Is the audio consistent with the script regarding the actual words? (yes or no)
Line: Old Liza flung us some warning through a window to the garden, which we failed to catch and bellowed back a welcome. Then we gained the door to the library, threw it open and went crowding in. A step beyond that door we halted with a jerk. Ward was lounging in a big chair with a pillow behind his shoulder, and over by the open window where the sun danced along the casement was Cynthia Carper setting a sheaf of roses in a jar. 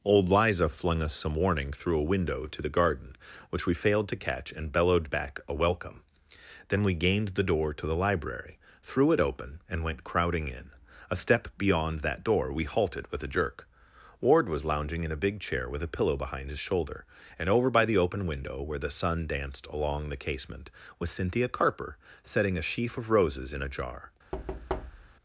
yes